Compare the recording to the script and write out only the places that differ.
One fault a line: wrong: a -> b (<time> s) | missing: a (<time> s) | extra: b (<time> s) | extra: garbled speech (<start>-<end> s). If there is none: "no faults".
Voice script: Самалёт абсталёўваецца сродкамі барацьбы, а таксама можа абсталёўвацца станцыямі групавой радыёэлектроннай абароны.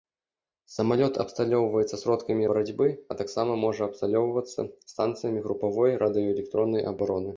no faults